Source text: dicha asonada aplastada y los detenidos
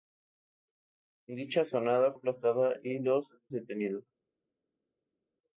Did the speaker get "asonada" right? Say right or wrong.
right